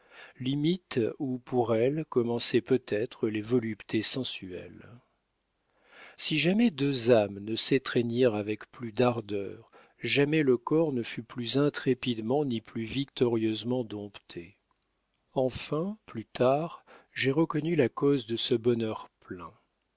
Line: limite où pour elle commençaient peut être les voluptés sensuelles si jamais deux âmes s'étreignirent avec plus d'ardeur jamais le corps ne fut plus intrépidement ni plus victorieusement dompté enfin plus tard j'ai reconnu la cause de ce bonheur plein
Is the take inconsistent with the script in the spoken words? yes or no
yes